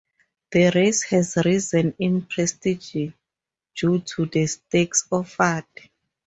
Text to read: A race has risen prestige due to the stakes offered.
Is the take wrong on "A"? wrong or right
wrong